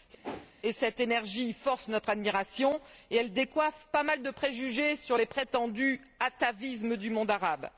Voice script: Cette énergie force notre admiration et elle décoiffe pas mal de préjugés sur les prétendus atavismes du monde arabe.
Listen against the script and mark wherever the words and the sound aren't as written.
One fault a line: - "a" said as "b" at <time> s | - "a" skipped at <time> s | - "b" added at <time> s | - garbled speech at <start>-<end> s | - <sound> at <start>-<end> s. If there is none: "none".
- whoosh at 0.2-0.5 s